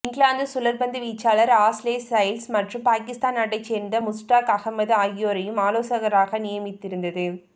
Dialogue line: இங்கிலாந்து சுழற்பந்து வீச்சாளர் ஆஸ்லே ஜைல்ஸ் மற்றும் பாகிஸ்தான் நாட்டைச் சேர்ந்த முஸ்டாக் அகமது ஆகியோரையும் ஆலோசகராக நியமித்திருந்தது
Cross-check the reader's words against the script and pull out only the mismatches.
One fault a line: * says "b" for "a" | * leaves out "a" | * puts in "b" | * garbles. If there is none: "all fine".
all fine